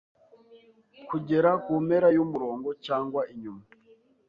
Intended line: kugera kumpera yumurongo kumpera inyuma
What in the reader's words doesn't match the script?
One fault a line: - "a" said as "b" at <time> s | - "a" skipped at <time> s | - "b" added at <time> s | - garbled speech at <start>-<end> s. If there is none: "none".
- "kumpera" said as "cyangwa" at 2.8 s